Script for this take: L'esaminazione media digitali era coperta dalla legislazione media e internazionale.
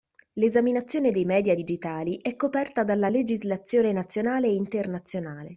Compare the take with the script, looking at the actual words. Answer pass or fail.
fail